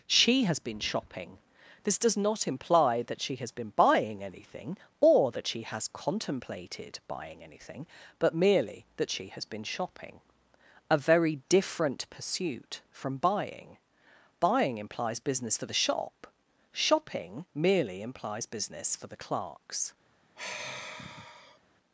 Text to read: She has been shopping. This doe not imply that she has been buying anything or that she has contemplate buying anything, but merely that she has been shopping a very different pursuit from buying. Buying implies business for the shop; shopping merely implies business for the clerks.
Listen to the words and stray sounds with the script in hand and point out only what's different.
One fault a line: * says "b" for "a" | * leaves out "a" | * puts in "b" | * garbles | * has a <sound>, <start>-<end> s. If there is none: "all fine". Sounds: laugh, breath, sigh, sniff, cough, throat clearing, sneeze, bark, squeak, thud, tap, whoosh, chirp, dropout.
* says "does" for "doe"
* says "contemplated" for "contemplate"
* has a sigh, 20.4-21.6 s